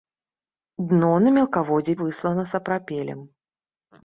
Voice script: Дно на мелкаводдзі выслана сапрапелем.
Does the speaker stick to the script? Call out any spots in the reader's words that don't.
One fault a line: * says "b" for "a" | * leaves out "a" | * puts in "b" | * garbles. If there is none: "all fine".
all fine